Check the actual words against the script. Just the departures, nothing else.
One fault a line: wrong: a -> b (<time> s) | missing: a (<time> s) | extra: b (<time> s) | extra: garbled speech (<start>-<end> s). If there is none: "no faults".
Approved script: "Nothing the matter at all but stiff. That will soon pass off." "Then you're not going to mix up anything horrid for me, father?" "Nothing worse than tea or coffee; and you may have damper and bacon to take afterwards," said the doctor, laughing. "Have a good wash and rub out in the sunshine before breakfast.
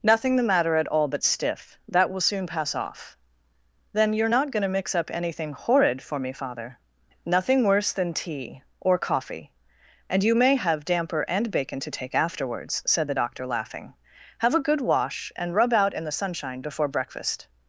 no faults